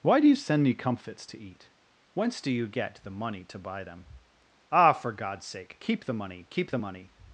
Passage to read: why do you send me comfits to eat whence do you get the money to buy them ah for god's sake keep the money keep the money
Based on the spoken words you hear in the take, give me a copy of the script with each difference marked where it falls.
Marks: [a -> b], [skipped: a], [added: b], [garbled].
why do you send me comfits to eat whence do you get the money to buy them ah for god's sake keep the money keep the money